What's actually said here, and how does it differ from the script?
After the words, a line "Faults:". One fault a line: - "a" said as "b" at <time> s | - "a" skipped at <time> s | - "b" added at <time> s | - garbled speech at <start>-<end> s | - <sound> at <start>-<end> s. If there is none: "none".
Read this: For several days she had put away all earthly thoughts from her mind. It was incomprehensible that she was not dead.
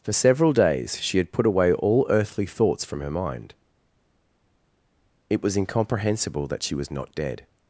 For several days she had put away all earthly thoughts from her mind. It was incomprehensible that she was not dead.
Faults:
none